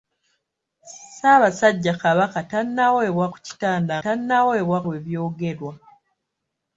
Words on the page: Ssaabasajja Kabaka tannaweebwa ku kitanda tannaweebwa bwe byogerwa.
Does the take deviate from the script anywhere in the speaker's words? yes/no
no